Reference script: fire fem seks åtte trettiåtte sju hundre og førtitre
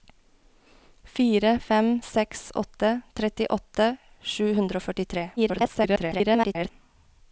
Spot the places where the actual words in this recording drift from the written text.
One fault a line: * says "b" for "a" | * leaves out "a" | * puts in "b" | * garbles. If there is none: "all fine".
* garbles